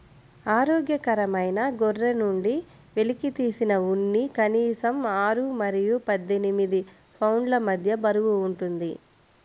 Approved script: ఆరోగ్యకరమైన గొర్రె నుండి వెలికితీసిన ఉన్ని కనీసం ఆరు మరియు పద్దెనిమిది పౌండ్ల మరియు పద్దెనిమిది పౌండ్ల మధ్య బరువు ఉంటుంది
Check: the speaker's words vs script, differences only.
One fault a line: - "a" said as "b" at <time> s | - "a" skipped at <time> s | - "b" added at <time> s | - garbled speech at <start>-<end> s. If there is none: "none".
- "మరియు పద్దెనిమిది పౌండ్ల" skipped at 7.6 s